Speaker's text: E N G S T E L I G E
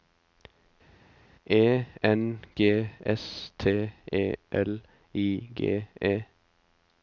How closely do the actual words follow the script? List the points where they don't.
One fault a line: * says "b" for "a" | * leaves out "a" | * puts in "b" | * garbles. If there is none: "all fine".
all fine